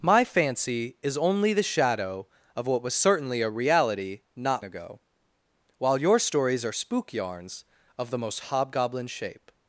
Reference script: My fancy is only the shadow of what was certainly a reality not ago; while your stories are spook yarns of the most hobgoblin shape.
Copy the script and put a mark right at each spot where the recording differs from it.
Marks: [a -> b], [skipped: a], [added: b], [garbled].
My fancy is only the shadow of what was certainly a reality not ago; while your stories are spook yarns of the most hobgoblin shape.